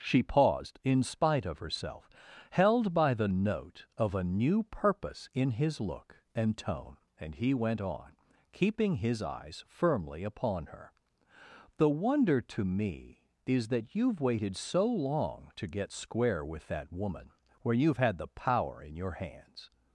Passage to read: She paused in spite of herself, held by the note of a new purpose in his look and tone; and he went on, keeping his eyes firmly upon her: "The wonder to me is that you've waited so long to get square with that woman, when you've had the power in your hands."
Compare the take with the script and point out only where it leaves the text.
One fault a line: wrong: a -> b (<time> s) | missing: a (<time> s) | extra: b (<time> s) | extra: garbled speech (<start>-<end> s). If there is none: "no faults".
wrong: when -> where (17.6 s)